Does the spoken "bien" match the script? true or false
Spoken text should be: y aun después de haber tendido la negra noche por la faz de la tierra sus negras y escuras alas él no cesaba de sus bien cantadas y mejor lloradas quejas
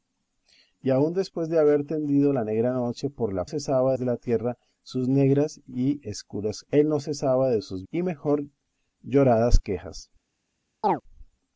false